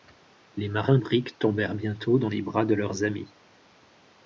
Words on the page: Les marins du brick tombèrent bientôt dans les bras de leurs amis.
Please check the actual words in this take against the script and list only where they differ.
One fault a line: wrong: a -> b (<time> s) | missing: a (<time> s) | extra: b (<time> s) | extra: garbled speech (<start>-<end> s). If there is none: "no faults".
missing: du (1.0 s)